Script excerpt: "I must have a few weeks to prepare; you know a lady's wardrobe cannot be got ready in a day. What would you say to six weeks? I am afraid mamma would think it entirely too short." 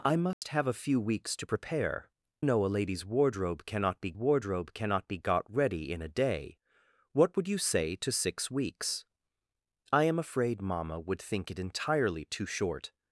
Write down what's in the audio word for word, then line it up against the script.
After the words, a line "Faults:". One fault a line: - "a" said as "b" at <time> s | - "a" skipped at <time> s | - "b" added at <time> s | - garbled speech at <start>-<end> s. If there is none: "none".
"I must have a few weeks to prepare; know a lady's wardrobe cannot be wardrobe cannot be got ready in a day. What would you say to six weeks? I am afraid mamma would think it entirely too short."
Faults:
- "you" skipped at 2.1 s
- "wardrobe cannot be" added at 4.1 s